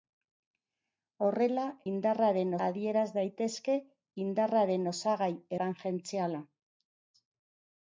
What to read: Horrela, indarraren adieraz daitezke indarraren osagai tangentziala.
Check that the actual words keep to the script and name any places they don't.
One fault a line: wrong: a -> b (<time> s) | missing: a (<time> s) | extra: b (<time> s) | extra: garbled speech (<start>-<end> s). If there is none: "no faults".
no faults